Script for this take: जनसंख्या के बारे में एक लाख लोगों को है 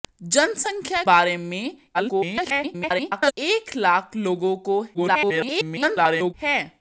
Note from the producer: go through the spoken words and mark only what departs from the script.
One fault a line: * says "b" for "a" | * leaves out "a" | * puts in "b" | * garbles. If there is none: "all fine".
* leaves out "के"
* garbles
* garbles